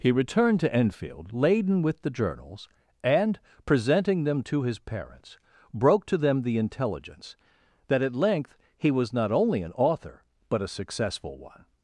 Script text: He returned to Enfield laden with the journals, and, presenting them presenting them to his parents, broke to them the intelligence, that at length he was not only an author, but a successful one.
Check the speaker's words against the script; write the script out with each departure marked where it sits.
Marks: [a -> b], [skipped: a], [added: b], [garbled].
He returned to Enfield laden with the journals, and, presenting them [skipped: presenting them] to his parents, broke to them the intelligence, that at length he was not only an author, but a successful one.